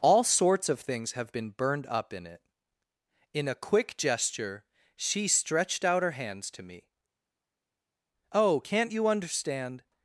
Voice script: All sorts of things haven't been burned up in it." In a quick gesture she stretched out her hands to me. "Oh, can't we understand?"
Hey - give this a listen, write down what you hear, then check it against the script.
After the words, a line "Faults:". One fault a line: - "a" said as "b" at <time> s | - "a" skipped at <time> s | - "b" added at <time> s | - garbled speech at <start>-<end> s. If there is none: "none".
All sorts of things have been burned up in it." In a quick gesture she stretched out her hands to me. "Oh, can't you understand?"
Faults:
- "haven't" said as "have" at 1.1 s
- "we" said as "you" at 8.9 s